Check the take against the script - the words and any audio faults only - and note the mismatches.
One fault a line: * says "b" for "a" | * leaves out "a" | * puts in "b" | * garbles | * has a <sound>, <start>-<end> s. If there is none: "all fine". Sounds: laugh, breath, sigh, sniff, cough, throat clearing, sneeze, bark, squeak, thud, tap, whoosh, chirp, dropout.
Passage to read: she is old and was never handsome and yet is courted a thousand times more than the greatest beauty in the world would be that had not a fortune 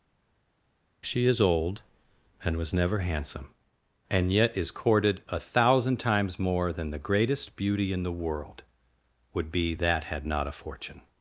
all fine